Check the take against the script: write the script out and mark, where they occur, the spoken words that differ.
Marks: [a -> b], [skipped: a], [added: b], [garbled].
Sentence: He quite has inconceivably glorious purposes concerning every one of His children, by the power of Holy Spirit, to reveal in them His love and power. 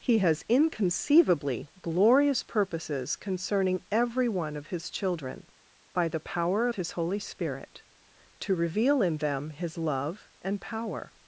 He [skipped: quite] has inconceivably glorious purposes concerning every one of His children, by the power of [added: His] Holy Spirit, to reveal in them His love and power.